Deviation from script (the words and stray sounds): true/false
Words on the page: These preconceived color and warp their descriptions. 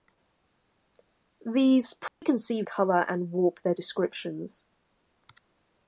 true